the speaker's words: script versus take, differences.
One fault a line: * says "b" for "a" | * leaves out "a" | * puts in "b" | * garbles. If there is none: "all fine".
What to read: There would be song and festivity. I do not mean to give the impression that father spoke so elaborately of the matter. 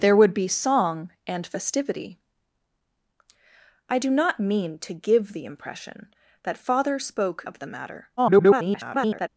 * leaves out "so elaborately"
* garbles